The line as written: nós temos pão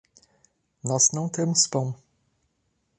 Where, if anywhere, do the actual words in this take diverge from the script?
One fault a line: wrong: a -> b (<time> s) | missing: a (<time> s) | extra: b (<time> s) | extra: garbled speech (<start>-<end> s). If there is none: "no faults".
extra: não (1.1 s)